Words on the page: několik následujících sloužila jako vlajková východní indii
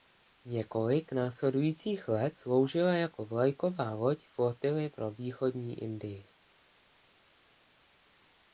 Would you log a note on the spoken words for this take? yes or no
yes